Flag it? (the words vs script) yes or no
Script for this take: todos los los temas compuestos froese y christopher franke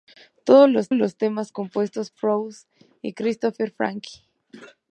no